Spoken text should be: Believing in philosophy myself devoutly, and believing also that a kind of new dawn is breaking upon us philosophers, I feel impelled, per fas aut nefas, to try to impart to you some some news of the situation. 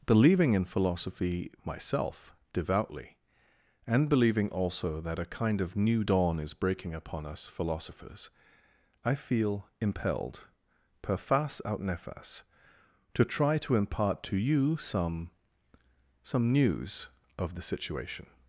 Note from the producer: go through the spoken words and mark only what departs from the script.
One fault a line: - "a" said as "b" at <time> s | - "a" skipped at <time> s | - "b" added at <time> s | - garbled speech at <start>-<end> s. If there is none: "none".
none